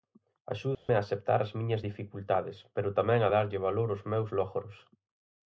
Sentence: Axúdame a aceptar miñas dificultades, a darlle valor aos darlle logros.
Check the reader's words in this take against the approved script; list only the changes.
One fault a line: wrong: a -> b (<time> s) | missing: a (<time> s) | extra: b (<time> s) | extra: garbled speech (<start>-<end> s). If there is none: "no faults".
extra: as (1.4 s)
extra: pero tamén (2.7 s)
wrong: darlle -> meus (4.1 s)